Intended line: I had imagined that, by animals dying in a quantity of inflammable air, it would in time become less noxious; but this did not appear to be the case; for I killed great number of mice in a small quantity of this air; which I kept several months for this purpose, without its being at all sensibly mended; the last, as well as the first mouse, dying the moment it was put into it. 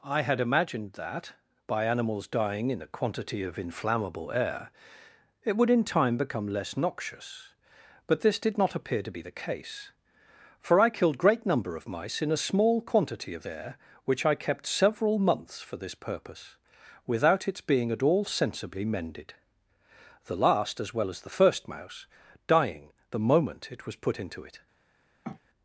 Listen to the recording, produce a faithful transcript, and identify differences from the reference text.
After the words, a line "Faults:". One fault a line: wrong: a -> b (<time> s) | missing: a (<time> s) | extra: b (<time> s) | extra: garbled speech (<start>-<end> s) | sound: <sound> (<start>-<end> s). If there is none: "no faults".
I had imagined that, by animals dying in a quantity of inflammable air, it would in time become less noxious; but this did not appear to be the case; for I killed great number of mice in a small quantity of air; which I kept several months for this purpose, without its being at all sensibly mended; the last, as well as the first mouse, dying the moment it was put into it.
Faults:
missing: this (13.4 s)
sound: sniff (25.2-25.4 s)